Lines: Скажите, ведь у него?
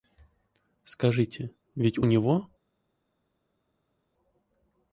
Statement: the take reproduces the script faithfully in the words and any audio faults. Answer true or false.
true